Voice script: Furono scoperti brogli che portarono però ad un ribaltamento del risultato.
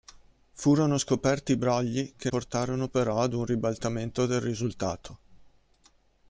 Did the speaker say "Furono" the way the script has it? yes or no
yes